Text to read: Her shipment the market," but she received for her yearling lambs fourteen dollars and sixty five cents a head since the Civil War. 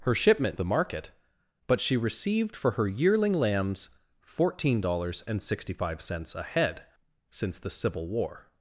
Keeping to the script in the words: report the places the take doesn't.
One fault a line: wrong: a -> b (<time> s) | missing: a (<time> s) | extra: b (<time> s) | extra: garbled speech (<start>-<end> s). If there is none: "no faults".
no faults